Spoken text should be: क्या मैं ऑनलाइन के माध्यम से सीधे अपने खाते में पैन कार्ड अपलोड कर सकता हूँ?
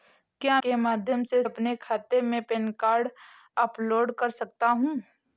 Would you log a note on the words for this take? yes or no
yes